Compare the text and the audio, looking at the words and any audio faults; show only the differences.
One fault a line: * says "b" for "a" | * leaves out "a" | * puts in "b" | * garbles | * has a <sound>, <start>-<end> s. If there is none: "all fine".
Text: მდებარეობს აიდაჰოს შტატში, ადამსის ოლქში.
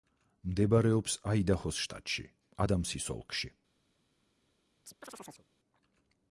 * has a chirp, 4.9-5.5 s